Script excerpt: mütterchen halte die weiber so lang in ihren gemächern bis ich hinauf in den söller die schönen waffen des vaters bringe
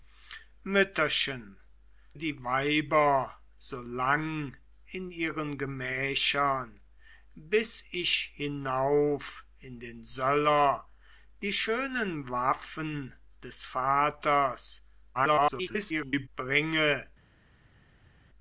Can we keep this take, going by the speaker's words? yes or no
no